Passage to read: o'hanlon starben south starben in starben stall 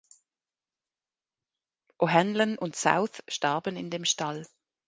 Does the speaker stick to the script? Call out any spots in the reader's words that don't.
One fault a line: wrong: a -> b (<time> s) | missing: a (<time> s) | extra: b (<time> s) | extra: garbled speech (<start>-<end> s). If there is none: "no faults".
wrong: starben -> und (2.6 s)
wrong: starben -> dem (3.9 s)